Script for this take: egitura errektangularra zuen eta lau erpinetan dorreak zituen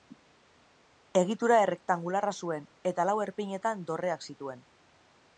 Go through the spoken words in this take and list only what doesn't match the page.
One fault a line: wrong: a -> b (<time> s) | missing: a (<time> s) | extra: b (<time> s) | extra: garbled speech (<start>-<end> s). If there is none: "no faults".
no faults